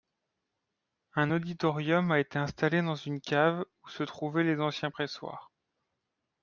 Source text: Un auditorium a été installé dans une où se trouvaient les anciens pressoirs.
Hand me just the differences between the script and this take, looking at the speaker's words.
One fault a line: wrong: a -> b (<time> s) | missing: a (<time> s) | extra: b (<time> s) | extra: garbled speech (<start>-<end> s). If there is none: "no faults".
extra: cave (3.2 s)